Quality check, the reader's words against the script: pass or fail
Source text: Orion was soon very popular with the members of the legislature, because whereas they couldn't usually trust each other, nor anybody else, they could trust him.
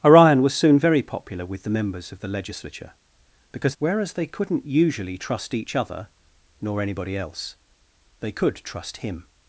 pass